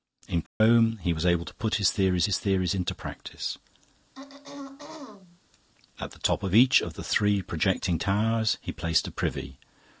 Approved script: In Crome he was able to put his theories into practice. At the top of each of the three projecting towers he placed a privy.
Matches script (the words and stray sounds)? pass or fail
fail